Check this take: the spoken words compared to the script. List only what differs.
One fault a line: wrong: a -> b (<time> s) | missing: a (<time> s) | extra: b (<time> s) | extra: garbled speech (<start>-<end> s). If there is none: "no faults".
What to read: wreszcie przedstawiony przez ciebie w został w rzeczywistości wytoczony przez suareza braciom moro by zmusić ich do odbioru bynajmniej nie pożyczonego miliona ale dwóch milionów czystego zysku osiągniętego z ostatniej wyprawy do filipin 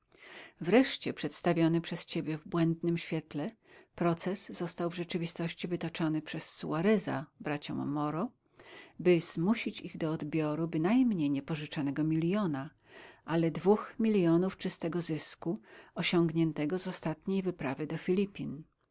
extra: błędnym świetle proces (2.5 s)